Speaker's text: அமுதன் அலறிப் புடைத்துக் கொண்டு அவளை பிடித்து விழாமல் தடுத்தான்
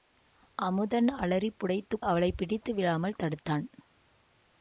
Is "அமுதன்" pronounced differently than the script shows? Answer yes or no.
no